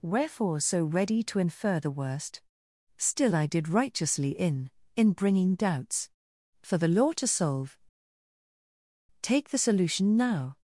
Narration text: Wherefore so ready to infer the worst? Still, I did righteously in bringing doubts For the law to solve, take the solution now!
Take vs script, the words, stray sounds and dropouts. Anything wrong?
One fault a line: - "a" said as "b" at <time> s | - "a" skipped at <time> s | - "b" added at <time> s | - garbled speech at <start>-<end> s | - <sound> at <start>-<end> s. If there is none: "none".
- "in" added at 5.0 s